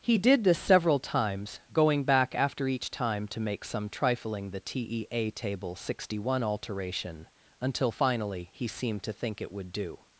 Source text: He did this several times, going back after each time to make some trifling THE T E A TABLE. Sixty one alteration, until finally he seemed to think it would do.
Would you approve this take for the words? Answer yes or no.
yes